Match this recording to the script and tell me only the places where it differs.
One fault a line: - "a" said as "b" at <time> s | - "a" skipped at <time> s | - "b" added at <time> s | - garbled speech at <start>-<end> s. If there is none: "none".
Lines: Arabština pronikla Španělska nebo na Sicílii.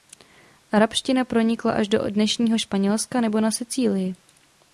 - "až do dnešního" added at 1.7 s